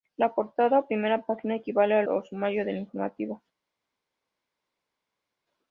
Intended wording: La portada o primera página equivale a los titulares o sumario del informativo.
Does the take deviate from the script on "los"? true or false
true